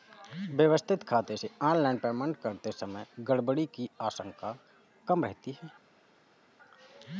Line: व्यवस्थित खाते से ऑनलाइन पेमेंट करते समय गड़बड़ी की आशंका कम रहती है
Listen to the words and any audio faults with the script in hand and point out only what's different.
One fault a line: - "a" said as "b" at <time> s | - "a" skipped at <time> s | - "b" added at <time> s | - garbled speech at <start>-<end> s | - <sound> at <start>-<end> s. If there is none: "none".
none